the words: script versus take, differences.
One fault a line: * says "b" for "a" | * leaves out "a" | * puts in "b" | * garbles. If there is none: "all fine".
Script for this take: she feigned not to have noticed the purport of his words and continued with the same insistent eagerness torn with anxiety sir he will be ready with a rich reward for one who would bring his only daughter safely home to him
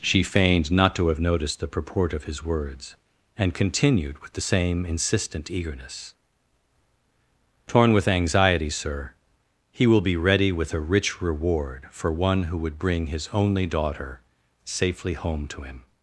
all fine